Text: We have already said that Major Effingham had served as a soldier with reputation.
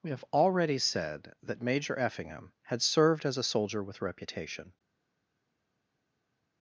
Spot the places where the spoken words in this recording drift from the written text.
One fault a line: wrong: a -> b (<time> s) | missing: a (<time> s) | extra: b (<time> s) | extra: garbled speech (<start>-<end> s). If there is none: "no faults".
no faults